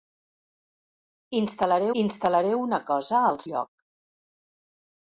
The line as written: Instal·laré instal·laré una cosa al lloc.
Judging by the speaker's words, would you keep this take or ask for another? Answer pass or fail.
pass